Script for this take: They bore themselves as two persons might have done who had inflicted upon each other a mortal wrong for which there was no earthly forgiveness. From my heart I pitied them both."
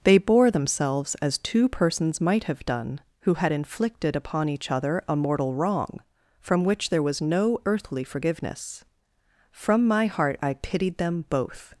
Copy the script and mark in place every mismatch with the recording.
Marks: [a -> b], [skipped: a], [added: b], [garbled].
They bore themselves as two persons might have done who had inflicted upon each other a mortal wrong [for -> from] which there was no earthly forgiveness. From my heart I pitied them both."